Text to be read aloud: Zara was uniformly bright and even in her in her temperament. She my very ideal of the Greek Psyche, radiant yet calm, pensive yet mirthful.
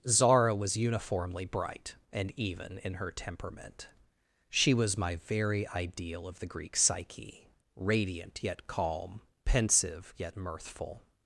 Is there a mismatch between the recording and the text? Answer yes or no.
yes